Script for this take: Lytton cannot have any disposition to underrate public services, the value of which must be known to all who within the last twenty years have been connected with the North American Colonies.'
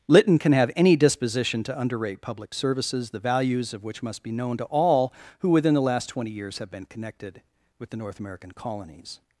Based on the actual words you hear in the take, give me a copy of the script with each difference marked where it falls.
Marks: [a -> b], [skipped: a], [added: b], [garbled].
Lytton [cannot -> can] have any disposition to underrate public services, the [value -> values] of which must be known to all who within the last twenty years have been connected with the North American Colonies.'